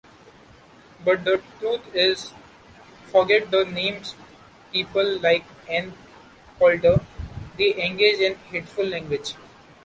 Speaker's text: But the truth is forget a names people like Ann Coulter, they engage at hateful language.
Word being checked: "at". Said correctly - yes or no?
no